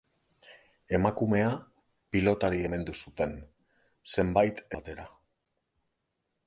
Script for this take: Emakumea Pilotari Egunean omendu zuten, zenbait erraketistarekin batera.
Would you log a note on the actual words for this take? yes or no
yes